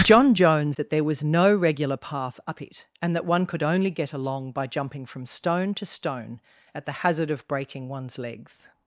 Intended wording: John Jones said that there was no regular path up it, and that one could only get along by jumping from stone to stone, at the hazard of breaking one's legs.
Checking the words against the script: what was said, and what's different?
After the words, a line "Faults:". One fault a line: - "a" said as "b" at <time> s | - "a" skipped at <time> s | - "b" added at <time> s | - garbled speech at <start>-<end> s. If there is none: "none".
John Jones that there was no regular path up it, and that one could only get along by jumping from stone to stone, at the hazard of breaking one's legs.
Faults:
- "said" skipped at 0.8 s